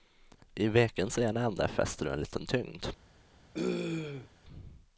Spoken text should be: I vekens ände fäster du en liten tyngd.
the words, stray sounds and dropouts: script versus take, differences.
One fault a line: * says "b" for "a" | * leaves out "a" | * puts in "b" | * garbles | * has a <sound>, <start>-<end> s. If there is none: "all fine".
* puts in "ena"
* has a throat clearing, 3.5-4.3 s